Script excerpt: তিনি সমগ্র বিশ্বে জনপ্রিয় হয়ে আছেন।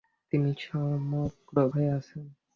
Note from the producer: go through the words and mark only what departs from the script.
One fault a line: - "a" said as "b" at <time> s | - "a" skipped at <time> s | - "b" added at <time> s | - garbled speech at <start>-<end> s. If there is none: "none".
- "বিশ্বে জনপ্রিয়" skipped at 1.6 s